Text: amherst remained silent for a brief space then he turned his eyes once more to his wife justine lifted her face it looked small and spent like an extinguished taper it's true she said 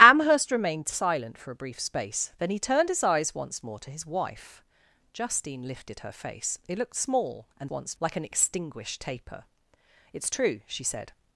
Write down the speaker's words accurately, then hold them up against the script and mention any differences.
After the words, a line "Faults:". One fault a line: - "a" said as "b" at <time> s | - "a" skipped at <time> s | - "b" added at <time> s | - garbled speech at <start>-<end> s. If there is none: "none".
amherst remained silent for a brief space then he turned his eyes once more to his wife justine lifted her face it looked small and once like an extinguished taper it's true she said
Faults:
- "spent" said as "once" at 7.7 s